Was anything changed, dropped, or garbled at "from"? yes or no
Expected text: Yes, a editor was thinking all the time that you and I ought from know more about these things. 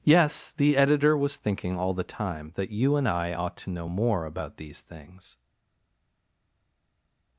yes